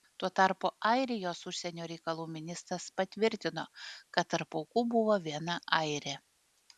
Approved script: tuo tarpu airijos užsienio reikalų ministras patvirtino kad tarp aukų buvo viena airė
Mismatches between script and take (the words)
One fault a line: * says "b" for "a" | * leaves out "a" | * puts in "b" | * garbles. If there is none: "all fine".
all fine